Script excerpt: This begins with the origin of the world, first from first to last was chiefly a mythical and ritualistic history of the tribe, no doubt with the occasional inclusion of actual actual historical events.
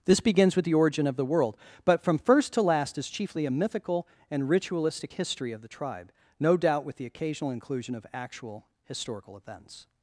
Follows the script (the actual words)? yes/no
no